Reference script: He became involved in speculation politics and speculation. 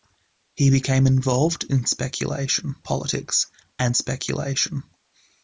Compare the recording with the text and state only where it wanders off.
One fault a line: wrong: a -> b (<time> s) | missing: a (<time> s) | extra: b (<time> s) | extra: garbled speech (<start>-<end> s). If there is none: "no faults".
no faults